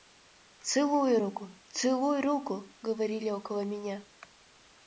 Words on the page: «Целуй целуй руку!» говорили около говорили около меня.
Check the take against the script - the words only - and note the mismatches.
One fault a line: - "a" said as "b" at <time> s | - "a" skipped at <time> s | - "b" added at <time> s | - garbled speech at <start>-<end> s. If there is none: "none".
- "руку" added at 1.2 s
- "говорили около" skipped at 3.6 s